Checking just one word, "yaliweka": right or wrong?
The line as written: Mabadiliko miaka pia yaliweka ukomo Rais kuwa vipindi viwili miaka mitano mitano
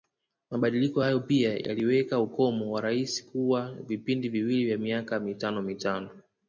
right